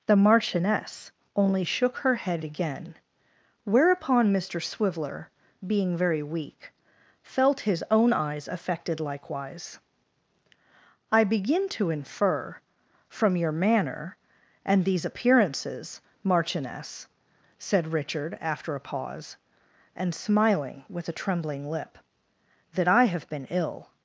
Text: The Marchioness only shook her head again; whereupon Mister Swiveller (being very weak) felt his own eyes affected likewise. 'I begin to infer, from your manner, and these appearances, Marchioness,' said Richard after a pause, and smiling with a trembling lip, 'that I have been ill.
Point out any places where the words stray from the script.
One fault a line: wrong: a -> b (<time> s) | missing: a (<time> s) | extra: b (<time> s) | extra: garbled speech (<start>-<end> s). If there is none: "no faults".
no faults